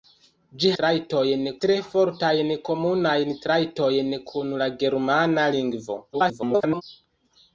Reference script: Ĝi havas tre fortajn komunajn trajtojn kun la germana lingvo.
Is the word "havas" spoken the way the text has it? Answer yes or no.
no